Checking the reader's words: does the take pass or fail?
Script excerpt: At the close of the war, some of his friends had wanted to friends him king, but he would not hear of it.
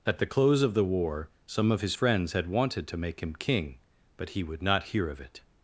fail